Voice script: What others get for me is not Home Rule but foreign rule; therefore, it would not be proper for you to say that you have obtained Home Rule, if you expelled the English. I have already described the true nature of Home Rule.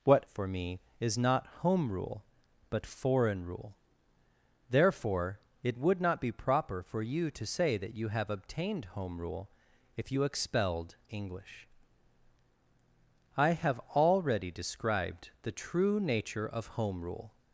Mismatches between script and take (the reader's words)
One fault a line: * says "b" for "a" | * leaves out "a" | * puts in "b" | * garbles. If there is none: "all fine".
* leaves out "others get"
* leaves out "the"